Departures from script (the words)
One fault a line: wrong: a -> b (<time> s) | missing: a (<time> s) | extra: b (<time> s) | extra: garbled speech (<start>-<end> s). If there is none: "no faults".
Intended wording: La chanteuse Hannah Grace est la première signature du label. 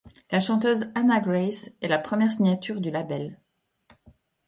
no faults